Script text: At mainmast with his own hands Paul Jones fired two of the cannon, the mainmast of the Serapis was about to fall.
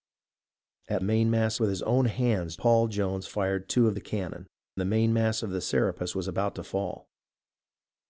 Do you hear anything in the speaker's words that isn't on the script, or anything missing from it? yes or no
no